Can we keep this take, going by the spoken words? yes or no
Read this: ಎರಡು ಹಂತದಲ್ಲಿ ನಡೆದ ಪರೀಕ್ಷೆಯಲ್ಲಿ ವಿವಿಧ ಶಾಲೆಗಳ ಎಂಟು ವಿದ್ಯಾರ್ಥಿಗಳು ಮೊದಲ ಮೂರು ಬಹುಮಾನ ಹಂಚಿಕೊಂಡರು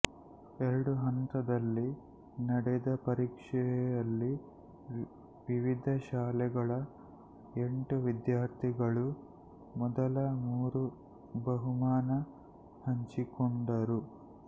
yes